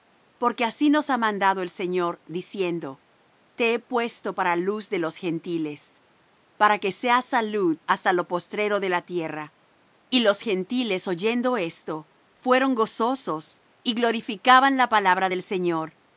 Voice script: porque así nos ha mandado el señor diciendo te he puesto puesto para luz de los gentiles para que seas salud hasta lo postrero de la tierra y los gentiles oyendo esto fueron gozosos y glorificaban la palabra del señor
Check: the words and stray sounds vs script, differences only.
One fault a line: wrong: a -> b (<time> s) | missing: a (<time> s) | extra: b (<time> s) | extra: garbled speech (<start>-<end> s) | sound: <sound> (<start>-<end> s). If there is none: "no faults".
missing: puesto (4.3 s)